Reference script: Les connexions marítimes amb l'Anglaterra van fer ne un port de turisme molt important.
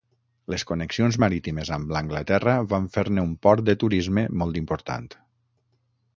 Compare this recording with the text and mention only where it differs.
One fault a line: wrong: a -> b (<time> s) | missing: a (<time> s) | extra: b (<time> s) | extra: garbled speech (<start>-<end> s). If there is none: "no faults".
no faults